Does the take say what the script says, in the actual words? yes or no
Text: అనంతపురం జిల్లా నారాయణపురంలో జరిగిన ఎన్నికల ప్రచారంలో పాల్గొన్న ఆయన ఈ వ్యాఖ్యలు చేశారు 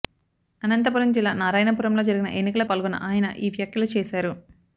no